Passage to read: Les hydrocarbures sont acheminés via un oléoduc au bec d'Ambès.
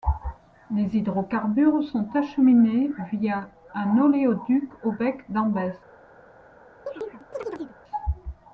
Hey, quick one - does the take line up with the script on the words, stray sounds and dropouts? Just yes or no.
no